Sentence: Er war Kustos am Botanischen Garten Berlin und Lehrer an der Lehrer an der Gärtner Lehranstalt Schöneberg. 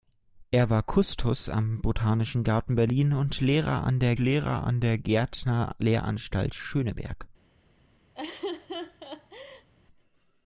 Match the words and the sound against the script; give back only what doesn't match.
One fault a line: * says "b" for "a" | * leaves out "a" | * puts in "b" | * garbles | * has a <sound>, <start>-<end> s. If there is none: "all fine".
* has a laugh, 8.1-9.7 s